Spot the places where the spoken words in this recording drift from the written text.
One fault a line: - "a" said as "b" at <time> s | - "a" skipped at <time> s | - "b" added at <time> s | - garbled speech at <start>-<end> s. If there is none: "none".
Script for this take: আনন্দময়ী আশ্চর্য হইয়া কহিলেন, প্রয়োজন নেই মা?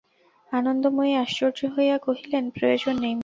none